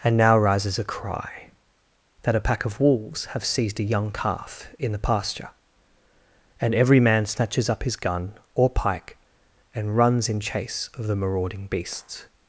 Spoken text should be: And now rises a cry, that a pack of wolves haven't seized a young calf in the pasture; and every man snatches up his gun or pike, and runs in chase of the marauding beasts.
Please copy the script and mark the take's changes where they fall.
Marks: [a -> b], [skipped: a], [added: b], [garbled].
And now rises a cry, that a pack of wolves [haven't -> have] seized a young calf in the pasture; and every man snatches up his gun or pike, and runs in chase of the marauding beasts.